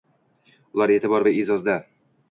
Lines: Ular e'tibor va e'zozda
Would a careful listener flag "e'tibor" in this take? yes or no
no